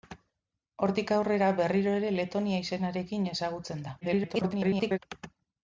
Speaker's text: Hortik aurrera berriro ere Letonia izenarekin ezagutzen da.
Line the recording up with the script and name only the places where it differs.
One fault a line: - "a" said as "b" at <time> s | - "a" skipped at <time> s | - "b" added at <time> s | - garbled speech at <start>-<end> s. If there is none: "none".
- garbled speech at 4.0-5.0 s